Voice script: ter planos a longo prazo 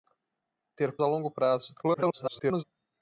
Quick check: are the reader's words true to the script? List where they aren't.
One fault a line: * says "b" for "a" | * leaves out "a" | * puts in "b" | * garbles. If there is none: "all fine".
* leaves out "planos"
* garbles